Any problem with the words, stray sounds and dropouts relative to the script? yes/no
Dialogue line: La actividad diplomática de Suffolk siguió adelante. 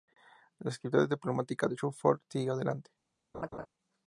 yes